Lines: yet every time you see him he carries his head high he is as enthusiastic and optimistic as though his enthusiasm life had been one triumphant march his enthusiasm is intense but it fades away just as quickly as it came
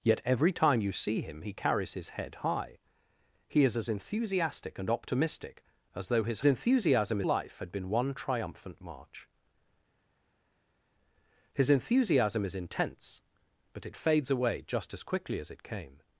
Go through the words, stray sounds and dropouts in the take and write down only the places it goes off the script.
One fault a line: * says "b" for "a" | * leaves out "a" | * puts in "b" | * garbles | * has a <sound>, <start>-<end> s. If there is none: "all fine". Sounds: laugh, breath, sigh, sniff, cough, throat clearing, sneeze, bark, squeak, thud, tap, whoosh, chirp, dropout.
all fine